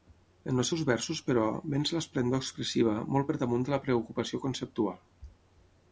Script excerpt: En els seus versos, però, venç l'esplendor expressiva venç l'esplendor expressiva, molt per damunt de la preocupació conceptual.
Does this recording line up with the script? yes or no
no